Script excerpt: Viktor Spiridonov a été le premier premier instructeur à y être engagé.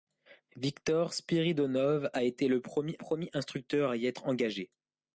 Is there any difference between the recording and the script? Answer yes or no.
no